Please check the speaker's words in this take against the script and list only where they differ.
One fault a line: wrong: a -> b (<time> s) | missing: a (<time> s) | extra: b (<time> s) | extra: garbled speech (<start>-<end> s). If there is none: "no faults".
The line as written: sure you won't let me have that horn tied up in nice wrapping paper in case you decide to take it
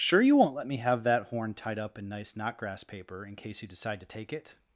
wrong: wrapping -> knotgrass (2.3 s)